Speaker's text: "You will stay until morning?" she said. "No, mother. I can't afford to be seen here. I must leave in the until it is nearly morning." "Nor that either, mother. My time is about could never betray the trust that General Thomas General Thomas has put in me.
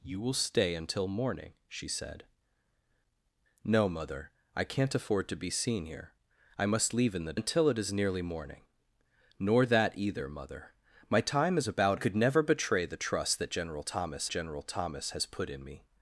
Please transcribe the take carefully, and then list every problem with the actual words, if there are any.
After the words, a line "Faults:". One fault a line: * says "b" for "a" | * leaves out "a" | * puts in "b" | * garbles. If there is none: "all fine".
"You will stay until morning?" she said. "No, mother. I can't afford to be seen here. I must leave in the until it is nearly morning." "Nor that either, mother. My time is about could never betray the trust that General Thomas General Thomas has put in me.
Faults:
all fine